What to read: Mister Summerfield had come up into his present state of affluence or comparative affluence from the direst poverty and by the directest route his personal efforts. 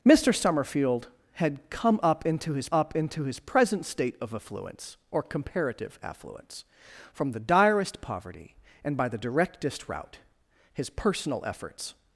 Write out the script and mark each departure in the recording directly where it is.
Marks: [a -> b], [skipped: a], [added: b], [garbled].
Mister Summerfield had come up into his [added: up into his] present state of affluence or comparative affluence from the direst poverty and by the directest route his personal efforts.